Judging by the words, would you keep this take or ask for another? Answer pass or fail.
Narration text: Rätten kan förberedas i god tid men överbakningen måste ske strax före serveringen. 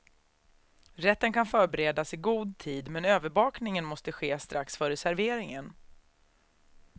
pass